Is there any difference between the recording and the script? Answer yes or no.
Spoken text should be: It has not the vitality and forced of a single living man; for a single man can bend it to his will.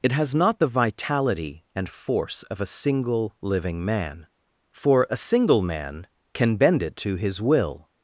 yes